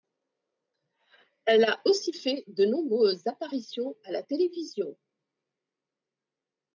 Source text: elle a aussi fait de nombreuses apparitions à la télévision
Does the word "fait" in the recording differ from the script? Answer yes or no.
no